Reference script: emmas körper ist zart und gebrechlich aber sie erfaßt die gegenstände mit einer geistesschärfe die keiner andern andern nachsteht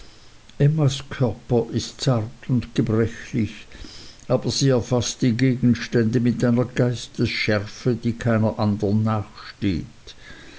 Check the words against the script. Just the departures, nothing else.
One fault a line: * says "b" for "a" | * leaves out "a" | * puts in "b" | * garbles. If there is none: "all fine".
* leaves out "andern"